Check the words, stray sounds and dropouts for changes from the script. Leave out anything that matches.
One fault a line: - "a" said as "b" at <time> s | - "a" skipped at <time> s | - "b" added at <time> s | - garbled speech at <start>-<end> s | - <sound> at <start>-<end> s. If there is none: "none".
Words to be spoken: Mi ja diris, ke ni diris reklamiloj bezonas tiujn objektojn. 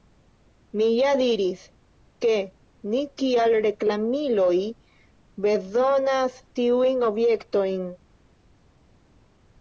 - "diris" said as "kiel" at 3.2 s